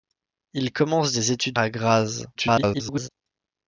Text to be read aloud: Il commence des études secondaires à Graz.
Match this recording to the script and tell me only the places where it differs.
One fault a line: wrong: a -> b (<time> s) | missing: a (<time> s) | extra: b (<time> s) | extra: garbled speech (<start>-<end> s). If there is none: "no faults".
missing: secondaires (1.6 s)
extra: garbled speech (2.3-3.1 s)